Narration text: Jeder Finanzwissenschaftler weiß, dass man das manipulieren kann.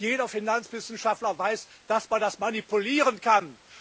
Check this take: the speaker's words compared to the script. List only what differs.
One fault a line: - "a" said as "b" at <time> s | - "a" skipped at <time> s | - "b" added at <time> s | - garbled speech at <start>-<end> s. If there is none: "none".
none